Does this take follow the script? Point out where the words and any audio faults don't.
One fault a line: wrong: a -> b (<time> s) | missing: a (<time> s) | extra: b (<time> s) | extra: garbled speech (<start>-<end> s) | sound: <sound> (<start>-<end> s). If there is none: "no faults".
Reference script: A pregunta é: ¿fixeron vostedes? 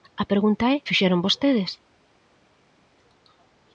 no faults